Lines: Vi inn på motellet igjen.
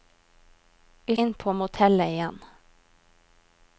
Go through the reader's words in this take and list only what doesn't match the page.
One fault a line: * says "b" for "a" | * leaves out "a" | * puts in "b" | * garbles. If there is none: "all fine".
all fine